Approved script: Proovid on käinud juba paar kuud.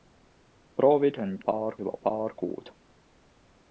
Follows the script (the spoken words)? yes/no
no